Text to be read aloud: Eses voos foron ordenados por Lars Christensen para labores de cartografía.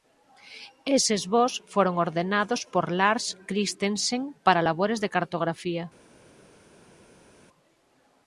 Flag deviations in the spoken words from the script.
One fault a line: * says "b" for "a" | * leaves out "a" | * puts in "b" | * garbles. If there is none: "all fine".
all fine